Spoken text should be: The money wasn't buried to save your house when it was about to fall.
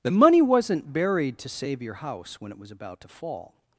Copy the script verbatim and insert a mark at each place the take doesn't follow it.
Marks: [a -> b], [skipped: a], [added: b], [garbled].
The money wasn't buried to save your house when it was about to fall.